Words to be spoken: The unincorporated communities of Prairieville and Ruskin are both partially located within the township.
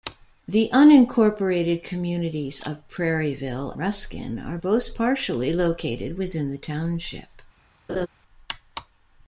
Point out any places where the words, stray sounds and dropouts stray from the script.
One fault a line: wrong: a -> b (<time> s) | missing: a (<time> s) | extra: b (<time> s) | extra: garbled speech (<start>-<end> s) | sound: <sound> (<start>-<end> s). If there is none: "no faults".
missing: and (3.8 s)
sound: laugh (7.9-8.1 s)